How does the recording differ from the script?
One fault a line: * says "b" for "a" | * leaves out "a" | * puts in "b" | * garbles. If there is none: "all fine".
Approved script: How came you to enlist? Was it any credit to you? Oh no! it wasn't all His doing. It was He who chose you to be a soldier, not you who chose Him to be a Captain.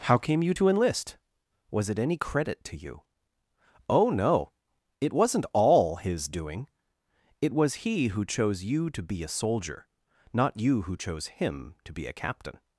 all fine